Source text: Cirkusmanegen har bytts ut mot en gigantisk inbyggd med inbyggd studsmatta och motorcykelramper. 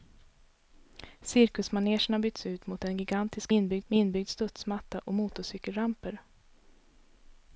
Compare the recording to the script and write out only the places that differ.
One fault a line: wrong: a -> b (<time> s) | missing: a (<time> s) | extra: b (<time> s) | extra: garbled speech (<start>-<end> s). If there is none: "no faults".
no faults